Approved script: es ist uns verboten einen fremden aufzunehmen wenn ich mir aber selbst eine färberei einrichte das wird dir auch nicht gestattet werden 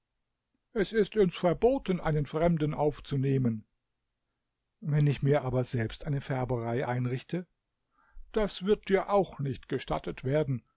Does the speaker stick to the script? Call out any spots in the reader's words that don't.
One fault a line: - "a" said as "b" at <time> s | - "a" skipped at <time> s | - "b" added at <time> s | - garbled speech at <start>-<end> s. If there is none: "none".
none